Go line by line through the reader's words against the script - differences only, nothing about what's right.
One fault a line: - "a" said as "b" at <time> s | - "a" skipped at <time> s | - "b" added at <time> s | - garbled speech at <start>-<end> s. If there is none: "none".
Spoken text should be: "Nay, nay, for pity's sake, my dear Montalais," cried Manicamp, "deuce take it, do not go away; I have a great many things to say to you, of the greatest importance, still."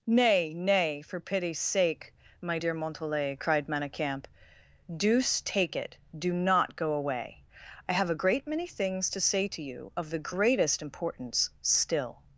none